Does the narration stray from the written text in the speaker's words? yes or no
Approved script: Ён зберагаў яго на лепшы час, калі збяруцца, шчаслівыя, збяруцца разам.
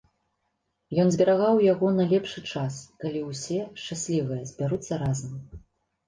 yes